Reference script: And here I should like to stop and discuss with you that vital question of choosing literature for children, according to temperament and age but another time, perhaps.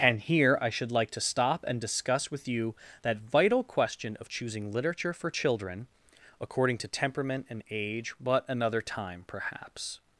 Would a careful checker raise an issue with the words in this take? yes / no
no